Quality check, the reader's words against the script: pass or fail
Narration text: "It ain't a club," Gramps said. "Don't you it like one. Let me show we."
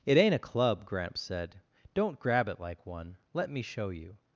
fail